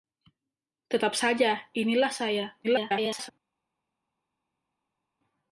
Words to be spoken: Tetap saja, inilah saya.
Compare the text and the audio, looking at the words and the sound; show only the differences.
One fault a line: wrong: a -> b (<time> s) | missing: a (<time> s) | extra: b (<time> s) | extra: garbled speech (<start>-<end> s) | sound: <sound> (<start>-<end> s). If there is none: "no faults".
extra: garbled speech (2.6-3.3 s)